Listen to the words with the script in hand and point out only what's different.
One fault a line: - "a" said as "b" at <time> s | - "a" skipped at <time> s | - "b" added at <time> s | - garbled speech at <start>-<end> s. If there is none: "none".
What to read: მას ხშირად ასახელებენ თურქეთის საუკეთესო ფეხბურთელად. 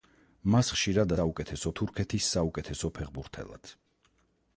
- "ასახელებენ" said as "საუკეთესო" at 1.2 s